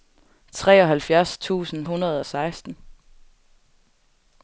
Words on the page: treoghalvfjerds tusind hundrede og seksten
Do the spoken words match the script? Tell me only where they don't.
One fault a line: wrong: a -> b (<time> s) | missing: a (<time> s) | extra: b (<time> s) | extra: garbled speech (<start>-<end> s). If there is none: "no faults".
no faults